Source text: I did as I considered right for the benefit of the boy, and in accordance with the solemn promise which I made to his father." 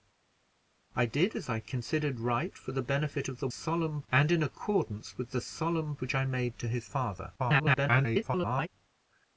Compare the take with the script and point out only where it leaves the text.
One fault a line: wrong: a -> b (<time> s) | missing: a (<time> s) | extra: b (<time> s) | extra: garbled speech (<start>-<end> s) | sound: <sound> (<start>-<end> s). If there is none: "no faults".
wrong: boy -> solemn (3.5 s)
missing: promise (6.0 s)
extra: garbled speech (7.4-8.7 s)